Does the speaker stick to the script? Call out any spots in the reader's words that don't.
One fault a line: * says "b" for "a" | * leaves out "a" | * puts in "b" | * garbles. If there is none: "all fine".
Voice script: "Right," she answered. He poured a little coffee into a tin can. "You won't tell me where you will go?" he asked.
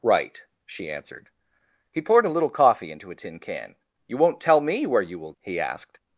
* leaves out "go"